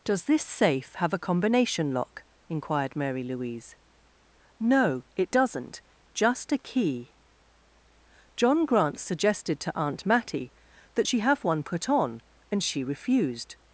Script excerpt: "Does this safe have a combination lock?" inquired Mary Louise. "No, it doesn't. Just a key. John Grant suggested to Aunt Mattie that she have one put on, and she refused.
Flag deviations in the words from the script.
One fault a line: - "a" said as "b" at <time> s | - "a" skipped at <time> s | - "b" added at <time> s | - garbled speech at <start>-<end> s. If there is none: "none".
none